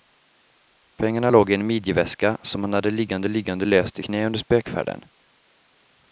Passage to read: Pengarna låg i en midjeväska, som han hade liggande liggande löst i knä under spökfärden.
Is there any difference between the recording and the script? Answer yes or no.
no